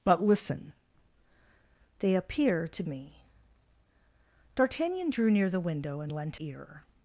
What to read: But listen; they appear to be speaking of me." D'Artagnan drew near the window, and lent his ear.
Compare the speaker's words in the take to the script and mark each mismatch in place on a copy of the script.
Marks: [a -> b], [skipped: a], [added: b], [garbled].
But listen; they appear to [skipped: be speaking of] me." D'Artagnan drew near the window, and lent [skipped: his] ear.